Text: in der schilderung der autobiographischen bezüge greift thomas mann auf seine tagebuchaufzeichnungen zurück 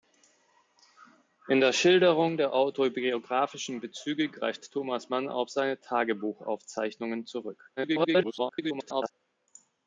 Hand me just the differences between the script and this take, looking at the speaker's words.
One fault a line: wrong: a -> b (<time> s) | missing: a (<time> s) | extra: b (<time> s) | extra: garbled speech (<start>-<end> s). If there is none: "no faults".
extra: garbled speech (7.8-9.1 s)